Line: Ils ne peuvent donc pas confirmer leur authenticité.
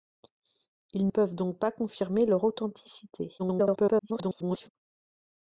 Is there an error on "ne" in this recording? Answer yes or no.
yes